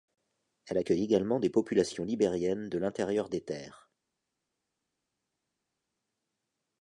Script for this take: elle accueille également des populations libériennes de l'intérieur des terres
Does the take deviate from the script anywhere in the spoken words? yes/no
no